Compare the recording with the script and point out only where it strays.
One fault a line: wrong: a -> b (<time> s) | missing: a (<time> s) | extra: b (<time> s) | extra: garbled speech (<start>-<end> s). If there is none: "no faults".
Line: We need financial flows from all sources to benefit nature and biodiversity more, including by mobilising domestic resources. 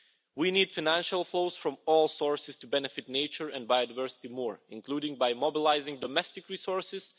no faults